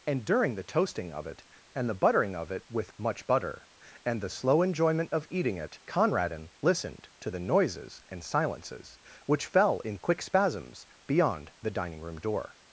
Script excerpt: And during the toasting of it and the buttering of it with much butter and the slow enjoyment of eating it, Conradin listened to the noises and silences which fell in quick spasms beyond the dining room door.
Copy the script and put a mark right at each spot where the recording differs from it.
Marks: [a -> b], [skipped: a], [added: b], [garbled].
And during the toasting of it and the buttering of it with much butter and the slow enjoyment of eating it, Conradin listened to the noises and silences which fell in quick spasms beyond the dining room door.